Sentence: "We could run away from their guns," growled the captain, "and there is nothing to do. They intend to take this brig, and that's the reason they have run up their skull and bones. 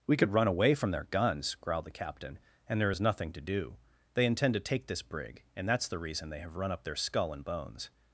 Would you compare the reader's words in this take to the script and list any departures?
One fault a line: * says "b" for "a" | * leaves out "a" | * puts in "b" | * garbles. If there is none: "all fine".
all fine